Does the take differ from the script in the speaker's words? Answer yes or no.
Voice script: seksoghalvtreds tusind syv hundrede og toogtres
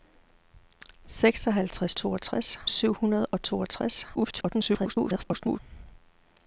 yes